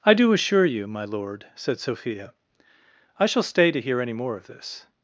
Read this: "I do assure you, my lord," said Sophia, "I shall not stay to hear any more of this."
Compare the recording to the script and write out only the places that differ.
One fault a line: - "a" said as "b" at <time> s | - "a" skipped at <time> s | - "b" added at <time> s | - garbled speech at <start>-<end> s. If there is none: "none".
- "not" skipped at 3.4 s